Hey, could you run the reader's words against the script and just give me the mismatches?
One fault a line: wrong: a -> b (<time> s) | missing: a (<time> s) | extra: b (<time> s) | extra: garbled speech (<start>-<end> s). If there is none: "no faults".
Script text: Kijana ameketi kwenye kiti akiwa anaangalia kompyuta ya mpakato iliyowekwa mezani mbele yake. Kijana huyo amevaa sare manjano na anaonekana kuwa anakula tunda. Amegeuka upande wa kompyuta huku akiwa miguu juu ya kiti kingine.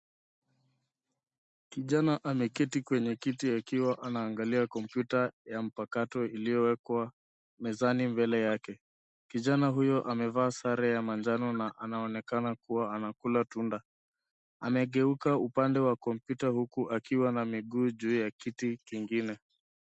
extra: ya (10.9 s)
extra: na (17.3 s)